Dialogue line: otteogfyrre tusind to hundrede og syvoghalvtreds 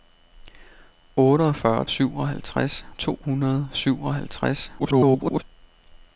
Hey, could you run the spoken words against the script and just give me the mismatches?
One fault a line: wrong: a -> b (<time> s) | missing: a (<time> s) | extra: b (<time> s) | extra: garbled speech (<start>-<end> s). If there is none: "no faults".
wrong: tusind -> syvoghalvtreds (1.9 s)
extra: garbled speech (4.8-5.4 s)